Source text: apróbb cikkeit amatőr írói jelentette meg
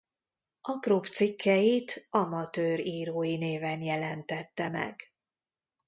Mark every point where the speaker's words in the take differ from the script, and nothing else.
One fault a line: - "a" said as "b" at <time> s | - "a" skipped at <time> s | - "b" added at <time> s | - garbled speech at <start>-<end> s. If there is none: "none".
- "néven" added at 3.4 s